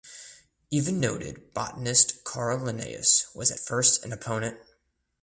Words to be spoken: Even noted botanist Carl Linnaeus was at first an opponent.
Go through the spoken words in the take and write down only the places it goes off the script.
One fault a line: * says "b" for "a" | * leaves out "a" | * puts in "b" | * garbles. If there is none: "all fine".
all fine